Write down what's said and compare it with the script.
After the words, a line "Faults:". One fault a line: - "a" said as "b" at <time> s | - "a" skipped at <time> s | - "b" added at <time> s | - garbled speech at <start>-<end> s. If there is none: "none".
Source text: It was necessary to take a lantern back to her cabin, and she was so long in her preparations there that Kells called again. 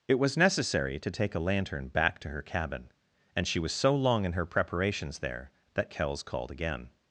It was necessary to take a lantern back to her cabin, and she was so long in her preparations there that Kells called again.
Faults:
none